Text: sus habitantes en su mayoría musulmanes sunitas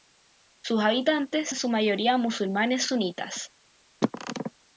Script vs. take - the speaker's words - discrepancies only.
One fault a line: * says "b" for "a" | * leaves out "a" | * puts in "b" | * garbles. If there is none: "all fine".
all fine